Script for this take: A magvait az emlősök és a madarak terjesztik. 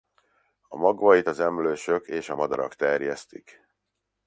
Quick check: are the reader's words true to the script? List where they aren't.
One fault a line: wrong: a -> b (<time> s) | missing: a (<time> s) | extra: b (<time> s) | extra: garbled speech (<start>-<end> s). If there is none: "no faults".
no faults